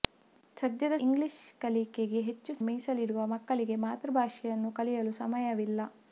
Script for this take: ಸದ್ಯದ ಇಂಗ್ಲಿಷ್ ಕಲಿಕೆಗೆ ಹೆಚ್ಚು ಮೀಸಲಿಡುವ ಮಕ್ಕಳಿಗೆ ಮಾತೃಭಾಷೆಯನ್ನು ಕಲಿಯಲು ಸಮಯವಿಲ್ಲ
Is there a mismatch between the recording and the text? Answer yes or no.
no